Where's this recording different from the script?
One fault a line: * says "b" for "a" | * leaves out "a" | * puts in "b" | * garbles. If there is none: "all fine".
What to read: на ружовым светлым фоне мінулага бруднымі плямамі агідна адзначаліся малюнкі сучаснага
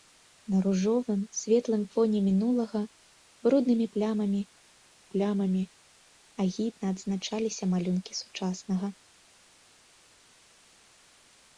* puts in "плямамі"